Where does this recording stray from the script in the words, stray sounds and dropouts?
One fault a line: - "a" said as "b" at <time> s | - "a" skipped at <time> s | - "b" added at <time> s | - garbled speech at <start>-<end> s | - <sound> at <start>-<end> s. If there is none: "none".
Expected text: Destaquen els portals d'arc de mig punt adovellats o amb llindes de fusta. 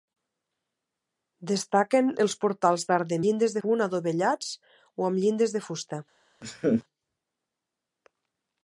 - "mig" said as "llindes" at 3.2 s
- laugh at 6.4-6.8 s